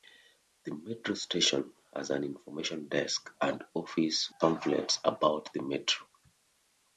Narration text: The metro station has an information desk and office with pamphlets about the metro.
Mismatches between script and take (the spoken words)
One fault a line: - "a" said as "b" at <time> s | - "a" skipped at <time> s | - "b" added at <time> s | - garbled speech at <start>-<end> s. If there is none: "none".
- "with" skipped at 4.3 s